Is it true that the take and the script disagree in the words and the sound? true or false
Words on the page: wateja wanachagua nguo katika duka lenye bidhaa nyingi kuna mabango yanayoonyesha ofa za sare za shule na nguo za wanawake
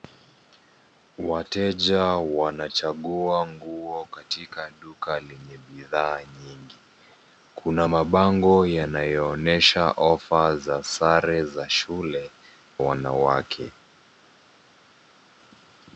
true